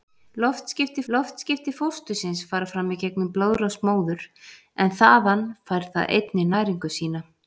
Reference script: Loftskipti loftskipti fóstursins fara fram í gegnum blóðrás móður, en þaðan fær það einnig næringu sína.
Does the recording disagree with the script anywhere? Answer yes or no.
no